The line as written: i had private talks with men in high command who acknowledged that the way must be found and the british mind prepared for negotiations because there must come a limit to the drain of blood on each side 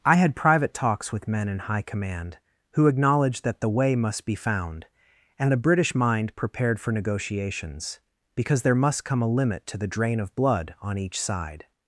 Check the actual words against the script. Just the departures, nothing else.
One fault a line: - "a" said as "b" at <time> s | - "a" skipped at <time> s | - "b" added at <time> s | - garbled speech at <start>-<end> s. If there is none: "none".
- "the" said as "a" at 5.5 s